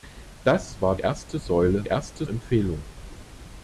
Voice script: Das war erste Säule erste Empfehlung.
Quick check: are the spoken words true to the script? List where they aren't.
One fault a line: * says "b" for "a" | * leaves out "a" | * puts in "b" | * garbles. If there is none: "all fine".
all fine